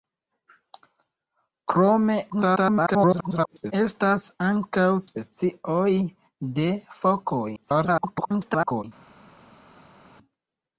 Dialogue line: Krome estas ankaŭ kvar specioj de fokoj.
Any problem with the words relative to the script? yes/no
yes